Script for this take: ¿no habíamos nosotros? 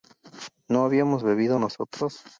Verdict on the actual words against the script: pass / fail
fail